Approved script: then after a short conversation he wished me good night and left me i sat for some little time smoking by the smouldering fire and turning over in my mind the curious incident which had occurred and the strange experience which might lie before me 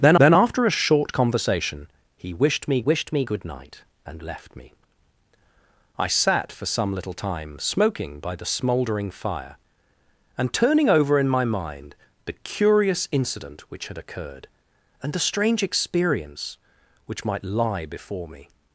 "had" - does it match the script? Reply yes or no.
yes